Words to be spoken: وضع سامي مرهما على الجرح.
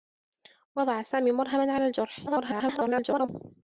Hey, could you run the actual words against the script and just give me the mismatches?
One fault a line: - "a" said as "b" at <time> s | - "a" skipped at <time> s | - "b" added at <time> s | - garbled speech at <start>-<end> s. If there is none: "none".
- garbled speech at 2.3-3.3 s